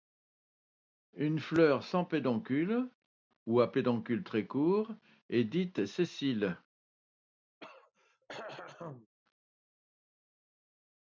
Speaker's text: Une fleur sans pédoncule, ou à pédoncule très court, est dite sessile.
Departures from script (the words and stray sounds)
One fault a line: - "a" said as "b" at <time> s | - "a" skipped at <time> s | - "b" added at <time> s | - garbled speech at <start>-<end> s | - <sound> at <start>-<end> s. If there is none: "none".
- throat clearing at 7.6-9.1 s